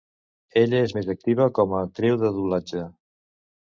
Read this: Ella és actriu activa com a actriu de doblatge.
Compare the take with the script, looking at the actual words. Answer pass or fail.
fail